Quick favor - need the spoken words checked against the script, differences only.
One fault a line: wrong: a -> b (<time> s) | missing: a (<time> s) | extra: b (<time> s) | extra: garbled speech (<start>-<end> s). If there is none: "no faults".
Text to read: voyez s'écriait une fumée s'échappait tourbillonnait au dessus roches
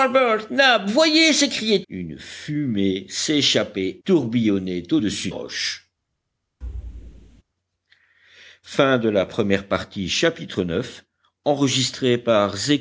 no faults